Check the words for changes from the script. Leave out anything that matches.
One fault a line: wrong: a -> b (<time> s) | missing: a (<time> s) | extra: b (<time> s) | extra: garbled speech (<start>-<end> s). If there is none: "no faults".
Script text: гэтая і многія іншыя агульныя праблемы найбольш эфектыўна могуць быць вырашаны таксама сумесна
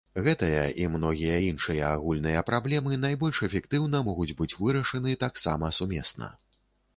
no faults